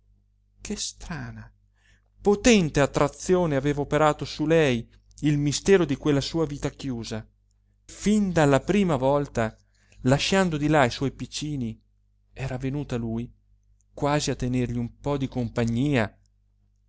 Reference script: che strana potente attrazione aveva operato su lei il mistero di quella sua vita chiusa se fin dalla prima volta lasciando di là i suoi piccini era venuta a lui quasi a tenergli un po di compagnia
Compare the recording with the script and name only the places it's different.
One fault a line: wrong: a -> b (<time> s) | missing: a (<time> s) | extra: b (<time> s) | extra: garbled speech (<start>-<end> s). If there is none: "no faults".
missing: se (7.2 s)